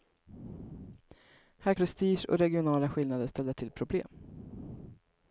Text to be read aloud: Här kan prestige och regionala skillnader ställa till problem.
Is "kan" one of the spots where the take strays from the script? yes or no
yes